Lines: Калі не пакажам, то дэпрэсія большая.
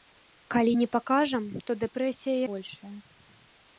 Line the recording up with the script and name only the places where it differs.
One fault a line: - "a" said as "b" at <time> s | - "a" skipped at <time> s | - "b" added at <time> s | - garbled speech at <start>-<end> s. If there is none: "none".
none